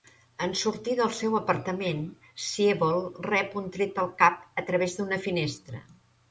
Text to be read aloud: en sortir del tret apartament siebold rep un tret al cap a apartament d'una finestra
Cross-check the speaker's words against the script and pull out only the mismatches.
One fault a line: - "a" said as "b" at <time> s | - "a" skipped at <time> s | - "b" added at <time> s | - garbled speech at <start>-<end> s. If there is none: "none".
- "tret" said as "seu" at 1.2 s
- "apartament" said as "través" at 4.7 s